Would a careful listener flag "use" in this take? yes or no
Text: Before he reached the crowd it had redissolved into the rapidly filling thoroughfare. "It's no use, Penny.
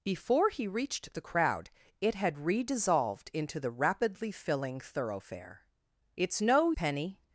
yes